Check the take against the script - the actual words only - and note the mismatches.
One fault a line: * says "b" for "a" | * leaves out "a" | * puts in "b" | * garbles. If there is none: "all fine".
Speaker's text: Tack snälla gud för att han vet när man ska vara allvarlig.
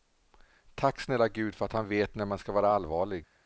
all fine